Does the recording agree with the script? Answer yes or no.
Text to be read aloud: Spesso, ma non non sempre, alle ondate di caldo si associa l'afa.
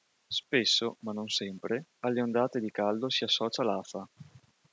no